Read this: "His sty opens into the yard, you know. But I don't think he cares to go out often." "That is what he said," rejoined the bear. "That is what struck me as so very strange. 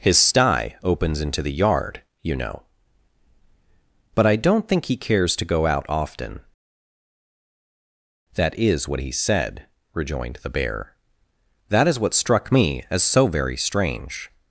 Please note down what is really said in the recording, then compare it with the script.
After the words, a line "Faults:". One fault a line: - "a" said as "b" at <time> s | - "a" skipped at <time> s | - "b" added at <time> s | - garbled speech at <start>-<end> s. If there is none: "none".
"His sty opens into the yard, you know. But I don't think he cares to go out often." "That is what he said," rejoined the bear. "That is what struck me as so very strange.
Faults:
none